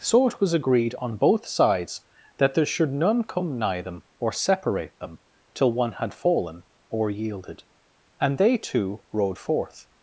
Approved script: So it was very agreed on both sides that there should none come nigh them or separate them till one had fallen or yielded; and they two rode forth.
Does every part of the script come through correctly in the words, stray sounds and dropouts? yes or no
no